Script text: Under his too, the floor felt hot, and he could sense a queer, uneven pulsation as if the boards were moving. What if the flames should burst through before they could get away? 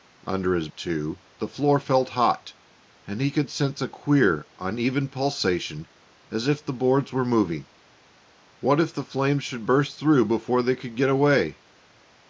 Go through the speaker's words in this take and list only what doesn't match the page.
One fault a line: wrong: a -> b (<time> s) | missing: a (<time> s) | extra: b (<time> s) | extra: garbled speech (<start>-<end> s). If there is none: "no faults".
no faults